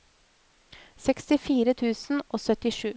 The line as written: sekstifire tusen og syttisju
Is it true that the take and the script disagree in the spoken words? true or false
false